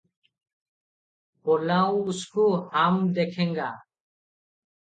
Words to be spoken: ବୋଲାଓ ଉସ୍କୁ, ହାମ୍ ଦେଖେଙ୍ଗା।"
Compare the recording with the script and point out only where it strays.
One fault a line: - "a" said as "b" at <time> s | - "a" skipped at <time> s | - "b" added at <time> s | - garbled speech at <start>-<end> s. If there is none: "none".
none